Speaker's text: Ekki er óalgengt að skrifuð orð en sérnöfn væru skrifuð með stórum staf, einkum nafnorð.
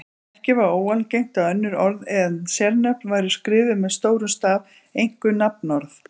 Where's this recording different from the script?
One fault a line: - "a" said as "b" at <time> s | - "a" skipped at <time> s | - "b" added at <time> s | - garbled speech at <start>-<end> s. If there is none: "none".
- "er" said as "var" at 0.6 s
- "skrifuð" said as "önnur" at 1.6 s